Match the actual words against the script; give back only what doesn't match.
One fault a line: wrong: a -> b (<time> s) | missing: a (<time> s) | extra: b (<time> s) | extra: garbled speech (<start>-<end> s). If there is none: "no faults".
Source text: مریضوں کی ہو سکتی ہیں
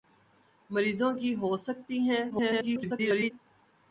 extra: garbled speech (2.3-3.3 s)